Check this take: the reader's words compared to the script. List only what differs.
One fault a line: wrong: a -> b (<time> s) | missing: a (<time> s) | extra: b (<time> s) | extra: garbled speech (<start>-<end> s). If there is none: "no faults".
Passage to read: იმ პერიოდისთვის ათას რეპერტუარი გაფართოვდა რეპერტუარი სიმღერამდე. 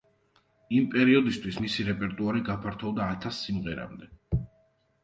wrong: ათას -> მისი (1.6 s)
wrong: რეპერტუარი -> ათას (3.2 s)